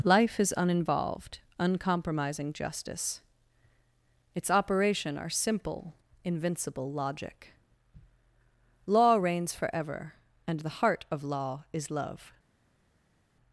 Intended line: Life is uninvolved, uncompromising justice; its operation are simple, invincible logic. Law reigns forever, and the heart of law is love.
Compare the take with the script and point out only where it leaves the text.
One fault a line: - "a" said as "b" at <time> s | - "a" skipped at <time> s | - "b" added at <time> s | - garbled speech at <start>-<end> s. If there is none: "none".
none